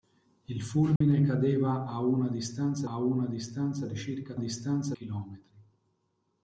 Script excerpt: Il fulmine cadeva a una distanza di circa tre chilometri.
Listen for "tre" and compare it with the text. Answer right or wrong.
wrong